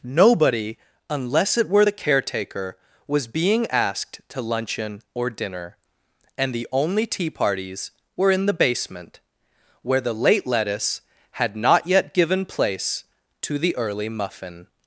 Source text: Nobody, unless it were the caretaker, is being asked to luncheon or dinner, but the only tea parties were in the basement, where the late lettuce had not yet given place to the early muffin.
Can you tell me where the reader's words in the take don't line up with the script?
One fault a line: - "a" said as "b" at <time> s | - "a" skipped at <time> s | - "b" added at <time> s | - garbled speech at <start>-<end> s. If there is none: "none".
- "is" said as "was" at 3.1 s
- "but" said as "and" at 6.4 s